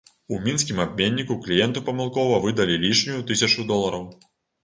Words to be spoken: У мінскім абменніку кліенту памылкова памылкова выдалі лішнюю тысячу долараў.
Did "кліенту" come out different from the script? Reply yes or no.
no